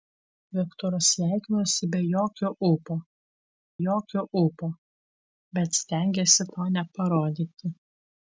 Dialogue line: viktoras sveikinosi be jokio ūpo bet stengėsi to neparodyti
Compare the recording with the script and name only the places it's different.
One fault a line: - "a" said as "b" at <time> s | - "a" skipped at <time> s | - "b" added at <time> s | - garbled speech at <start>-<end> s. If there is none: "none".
- "jokio ūpo" added at 3.9 s